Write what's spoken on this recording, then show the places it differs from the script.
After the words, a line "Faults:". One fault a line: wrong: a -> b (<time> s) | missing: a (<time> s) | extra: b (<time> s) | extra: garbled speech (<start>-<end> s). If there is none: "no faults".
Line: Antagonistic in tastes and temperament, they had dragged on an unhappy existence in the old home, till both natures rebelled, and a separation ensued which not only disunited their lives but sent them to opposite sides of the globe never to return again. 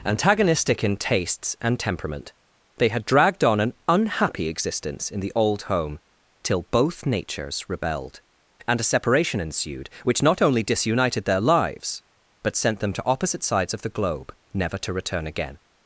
Antagonistic in tastes and temperament, they had dragged on an unhappy existence in the old home, till both natures rebelled, and a separation ensued which not only disunited their lives but sent them to opposite sides of the globe never to return again.
Faults:
no faults